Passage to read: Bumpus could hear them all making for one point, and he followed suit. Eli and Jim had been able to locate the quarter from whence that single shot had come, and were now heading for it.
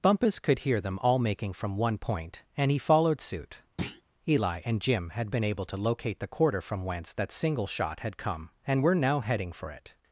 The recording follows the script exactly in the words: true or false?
false